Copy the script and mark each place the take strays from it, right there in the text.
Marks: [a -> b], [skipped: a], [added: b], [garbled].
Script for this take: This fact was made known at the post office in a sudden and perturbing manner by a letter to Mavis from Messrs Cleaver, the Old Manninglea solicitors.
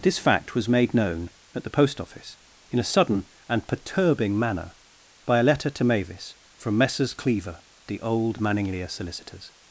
This fact was made known at the post office in a sudden and perturbing manner by a letter to Mavis from Messrs Cleaver, the Old Manninglea solicitors.